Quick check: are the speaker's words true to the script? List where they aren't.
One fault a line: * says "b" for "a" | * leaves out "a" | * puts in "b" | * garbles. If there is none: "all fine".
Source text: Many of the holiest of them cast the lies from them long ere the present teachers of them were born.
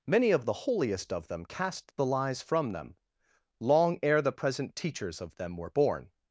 all fine